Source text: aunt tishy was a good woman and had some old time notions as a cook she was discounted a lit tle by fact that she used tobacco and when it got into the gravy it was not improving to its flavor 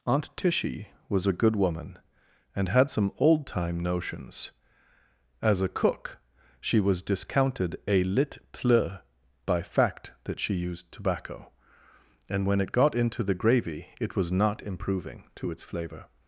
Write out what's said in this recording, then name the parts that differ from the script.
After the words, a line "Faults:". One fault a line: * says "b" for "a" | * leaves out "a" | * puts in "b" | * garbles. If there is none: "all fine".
aunt tishy was a good woman and had some old time notions as a cook she was discounted a lit tle by fact that she used tobacco and when it got into the gravy it was not improving to its flavor
Faults:
all fine